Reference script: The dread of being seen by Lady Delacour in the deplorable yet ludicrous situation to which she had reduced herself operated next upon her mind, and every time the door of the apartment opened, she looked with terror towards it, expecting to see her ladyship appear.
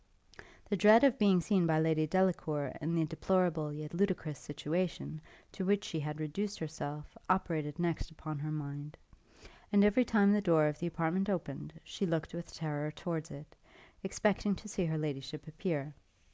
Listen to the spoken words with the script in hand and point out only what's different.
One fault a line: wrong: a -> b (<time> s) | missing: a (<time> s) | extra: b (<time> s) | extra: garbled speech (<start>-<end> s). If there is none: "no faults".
no faults